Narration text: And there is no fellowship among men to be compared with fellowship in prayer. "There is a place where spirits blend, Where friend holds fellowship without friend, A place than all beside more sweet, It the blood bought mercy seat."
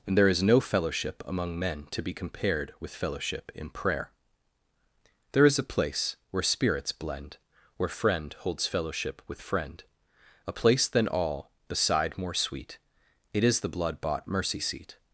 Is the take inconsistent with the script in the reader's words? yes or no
yes